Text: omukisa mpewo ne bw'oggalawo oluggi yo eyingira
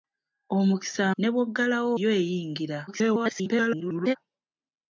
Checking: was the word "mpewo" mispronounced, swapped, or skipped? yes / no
yes